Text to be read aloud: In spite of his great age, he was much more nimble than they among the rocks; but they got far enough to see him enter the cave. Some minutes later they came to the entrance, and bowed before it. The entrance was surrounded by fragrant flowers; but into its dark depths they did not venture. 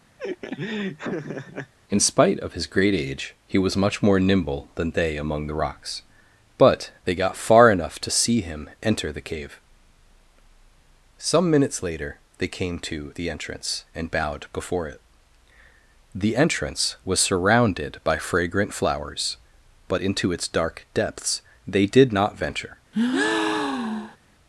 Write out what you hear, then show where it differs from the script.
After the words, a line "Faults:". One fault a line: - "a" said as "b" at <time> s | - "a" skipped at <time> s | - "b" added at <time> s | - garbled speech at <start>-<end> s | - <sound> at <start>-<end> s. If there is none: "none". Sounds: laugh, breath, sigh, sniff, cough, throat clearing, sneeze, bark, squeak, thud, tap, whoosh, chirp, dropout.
In spite of his great age, he was much more nimble than they among the rocks; but they got far enough to see him enter the cave. Some minutes later they came to the entrance, and bowed before it. The entrance was surrounded by fragrant flowers; but into its dark depths they did not venture.
Faults:
- laugh at 0.2-1.7 s
- breath at 22.9-24.2 s